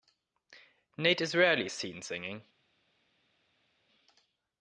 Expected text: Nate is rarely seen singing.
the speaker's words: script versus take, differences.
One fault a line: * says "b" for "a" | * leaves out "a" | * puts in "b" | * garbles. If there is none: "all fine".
all fine